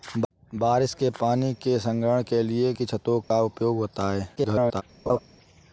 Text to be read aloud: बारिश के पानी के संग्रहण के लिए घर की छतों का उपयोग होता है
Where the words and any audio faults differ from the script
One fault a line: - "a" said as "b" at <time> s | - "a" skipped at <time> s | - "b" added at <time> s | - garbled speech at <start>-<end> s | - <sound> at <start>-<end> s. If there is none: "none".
- "घर" skipped at 2.7 s
- dropout at 3.2-3.3 s
- garbled speech at 4.4-4.8 s
- laugh at 5.1-5.2 s